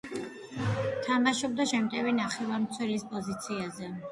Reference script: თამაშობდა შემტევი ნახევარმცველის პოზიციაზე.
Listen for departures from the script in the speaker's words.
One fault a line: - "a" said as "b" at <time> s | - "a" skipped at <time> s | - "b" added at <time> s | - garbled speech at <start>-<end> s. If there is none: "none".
none